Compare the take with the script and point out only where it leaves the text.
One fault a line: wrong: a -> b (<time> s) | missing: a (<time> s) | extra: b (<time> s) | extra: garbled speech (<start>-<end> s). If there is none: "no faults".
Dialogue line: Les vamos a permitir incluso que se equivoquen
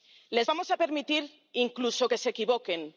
no faults